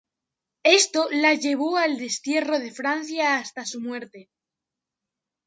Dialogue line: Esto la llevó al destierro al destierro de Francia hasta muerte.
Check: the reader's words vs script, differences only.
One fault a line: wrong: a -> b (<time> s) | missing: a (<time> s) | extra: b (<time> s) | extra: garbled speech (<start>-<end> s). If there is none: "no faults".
missing: al destierro (2.6 s)
extra: su (3.6 s)